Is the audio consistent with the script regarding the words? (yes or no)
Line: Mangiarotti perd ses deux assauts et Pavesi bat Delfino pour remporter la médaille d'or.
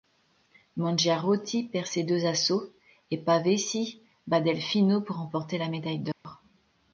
yes